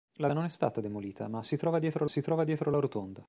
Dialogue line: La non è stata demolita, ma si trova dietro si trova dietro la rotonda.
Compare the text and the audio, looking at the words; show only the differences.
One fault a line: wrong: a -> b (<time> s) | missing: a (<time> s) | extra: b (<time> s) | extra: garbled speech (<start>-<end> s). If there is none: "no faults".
no faults